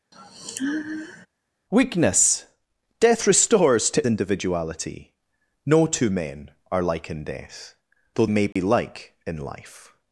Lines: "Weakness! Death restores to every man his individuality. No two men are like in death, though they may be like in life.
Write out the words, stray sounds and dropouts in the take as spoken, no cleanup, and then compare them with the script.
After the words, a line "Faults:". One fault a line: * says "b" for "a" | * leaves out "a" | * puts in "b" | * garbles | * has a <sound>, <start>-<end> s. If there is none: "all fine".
"Weakness! Death restores to individuality. No two men are like in death, though may be like in life.
Faults:
* has a sigh, 0.1-1.3 s
* leaves out "every man his"
* leaves out "they"
* has a dropout, 8.5-8.6 s